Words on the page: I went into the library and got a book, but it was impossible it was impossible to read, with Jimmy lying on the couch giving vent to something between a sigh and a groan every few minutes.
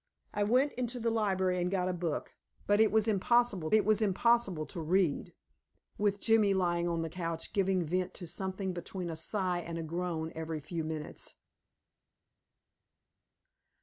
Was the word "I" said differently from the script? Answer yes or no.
no